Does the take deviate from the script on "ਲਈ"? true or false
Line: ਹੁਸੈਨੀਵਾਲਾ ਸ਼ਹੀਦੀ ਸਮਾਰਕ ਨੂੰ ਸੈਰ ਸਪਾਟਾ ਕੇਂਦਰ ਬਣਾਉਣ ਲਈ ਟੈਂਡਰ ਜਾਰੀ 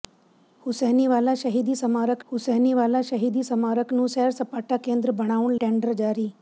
true